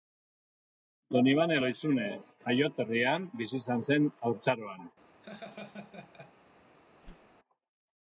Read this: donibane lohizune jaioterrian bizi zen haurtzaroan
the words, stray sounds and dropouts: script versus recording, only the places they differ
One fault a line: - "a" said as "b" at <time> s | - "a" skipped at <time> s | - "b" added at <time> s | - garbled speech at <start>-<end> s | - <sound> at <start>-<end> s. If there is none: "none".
- "izan" added at 3.6 s
- laugh at 5.2-6.3 s
- whoosh at 7.0-7.4 s